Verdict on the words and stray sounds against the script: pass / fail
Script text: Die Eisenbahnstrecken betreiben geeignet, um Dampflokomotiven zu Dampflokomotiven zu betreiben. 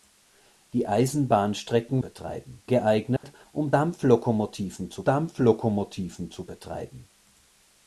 fail